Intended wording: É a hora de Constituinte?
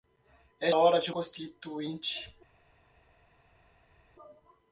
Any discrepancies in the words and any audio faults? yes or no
no